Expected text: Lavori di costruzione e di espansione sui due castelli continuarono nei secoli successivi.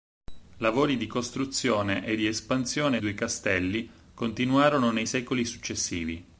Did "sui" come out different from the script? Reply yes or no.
yes